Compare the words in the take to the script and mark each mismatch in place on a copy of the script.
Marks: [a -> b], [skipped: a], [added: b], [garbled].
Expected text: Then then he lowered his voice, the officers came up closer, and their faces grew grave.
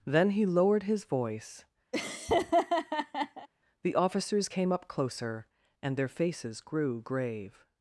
Then [skipped: then] he lowered his voice, the officers came up closer, and their faces grew grave.